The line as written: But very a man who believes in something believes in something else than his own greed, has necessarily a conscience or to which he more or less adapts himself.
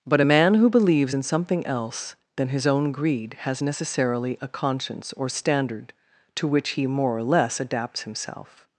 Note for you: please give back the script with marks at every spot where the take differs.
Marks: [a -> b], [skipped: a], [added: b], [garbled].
But [skipped: very] a man who believes in something [skipped: believes in something] else than his own greed, has necessarily a conscience or [added: standard] to which he more or less adapts himself.